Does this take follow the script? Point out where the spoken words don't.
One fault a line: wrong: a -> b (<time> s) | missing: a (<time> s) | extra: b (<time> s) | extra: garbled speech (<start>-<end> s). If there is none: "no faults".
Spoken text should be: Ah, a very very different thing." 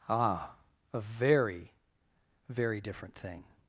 no faults